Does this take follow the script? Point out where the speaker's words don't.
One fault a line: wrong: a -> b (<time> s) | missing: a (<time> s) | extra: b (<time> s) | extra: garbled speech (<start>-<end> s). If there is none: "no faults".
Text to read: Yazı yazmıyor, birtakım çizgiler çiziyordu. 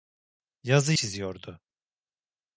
missing: yazmıyor birtakım çizgiler (0.9 s)